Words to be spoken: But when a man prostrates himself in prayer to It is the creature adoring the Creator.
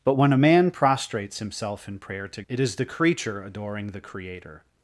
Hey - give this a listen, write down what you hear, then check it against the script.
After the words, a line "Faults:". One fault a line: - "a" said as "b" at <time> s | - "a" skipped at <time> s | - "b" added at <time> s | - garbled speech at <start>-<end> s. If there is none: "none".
But when a man prostrates himself in prayer to It is the creature adoring the Creator.
Faults:
none